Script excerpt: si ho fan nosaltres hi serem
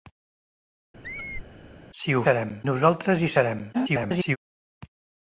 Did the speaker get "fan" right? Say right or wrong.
wrong